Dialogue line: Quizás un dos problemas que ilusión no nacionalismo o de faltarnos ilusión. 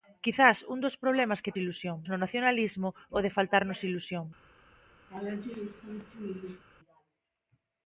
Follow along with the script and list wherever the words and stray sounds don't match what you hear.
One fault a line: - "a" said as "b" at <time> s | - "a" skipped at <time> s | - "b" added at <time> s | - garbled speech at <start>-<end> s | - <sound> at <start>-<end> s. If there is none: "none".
- laugh at 5.1-6.6 s